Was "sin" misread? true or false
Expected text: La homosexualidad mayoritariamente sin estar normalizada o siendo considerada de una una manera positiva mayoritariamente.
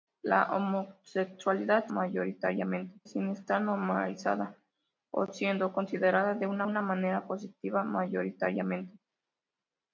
false